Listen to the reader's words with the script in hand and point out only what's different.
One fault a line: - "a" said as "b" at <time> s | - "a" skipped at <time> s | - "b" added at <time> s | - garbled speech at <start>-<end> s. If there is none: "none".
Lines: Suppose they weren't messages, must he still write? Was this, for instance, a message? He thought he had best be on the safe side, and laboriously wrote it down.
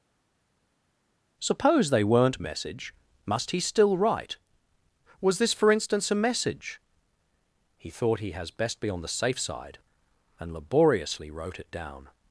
- "messages" said as "message" at 2.4 s
- "had" said as "has" at 8.3 s